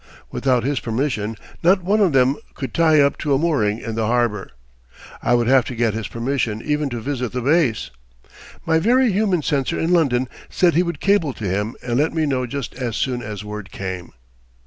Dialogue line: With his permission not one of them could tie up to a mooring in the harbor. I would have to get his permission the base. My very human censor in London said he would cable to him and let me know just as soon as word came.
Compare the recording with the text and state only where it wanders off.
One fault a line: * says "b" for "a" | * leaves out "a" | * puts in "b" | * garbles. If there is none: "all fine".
* says "Without" for "With"
* puts in "even to visit"